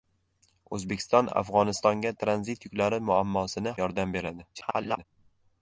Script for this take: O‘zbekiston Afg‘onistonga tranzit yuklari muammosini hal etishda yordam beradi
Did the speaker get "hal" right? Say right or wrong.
wrong